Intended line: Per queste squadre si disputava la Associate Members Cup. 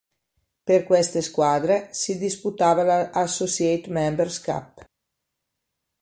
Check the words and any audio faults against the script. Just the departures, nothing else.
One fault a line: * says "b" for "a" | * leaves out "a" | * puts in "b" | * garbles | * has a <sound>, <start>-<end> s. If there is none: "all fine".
all fine